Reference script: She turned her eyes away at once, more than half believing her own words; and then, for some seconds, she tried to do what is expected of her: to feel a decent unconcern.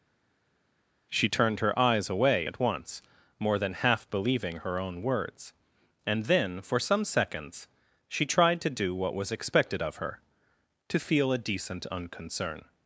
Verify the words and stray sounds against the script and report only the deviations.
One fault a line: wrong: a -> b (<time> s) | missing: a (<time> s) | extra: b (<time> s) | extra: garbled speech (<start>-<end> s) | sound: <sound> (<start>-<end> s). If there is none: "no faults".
wrong: is -> was (9.1 s)